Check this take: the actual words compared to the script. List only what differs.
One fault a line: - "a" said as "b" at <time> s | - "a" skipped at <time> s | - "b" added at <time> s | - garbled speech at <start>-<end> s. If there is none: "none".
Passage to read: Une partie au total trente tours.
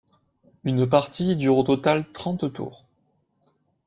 - "dure" added at 1.4 s